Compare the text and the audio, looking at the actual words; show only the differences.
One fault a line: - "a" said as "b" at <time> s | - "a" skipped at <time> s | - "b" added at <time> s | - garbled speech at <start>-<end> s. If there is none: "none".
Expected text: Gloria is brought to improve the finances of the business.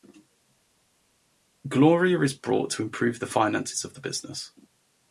none